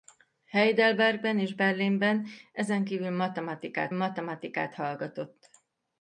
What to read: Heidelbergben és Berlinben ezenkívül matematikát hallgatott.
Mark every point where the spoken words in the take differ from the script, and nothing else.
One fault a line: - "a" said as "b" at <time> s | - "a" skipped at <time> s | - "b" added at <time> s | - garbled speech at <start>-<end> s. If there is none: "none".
- "matematikát" added at 3.9 s